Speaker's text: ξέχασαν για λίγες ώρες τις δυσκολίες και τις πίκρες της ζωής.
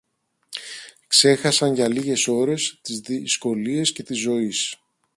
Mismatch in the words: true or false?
true